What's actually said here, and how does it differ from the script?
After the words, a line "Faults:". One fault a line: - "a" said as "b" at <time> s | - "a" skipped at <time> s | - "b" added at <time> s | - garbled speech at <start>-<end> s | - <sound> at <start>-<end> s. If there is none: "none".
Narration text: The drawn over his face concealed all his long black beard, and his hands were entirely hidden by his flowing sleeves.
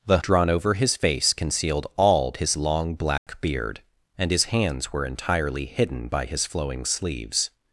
The drawn over his face concealed all his long black beard, and his hands were entirely hidden by his flowing sleeves.
Faults:
- dropout at 3.2-3.3 s